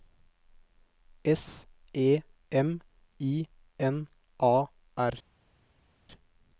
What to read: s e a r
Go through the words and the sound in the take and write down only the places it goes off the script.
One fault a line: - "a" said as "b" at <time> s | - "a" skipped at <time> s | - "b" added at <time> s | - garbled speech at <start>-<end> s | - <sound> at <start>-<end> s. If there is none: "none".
- "m i n" added at 2.5 s